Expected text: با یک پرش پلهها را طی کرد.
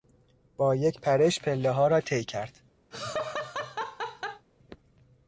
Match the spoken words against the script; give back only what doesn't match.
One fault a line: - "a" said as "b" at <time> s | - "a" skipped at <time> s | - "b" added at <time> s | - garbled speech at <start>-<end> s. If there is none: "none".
none